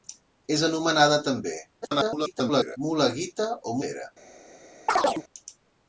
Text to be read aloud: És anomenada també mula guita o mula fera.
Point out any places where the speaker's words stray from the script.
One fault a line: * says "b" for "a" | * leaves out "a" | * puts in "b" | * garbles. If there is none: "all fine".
* garbles
* leaves out "mula"